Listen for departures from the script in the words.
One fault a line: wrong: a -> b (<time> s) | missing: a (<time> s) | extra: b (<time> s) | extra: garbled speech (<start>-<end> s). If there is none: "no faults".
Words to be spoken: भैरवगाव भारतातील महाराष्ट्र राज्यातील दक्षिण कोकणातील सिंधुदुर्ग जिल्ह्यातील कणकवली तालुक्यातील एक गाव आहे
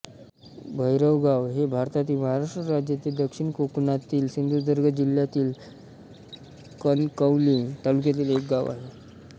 extra: हे (1.5 s)